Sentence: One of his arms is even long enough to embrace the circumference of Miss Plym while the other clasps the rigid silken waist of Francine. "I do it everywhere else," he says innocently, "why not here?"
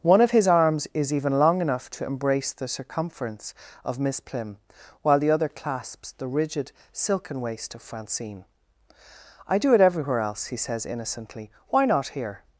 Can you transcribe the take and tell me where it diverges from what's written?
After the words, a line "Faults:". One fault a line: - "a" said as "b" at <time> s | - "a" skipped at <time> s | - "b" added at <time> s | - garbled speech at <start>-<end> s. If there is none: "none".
One of his arms is even long enough to embrace the circumference of Miss Plym while the other clasps the rigid silken waist of Francine. "I do it everywhere else," he says innocently, "why not here?"
Faults:
none